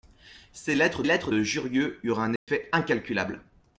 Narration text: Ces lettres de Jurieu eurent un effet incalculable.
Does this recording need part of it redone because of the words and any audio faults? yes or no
yes